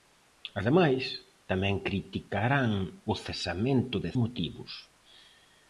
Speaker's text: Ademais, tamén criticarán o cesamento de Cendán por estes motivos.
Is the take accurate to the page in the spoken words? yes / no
no